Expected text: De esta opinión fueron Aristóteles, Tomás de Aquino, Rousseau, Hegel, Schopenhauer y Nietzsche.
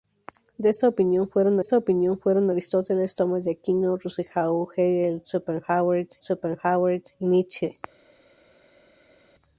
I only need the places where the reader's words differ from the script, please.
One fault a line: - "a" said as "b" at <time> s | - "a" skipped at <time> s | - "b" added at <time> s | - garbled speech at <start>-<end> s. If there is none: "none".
- "esta opinión fueron" added at 1.6 s
- "Schopenhauer" added at 6.2 s